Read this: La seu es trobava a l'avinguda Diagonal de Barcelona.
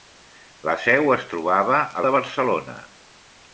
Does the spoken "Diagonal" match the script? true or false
false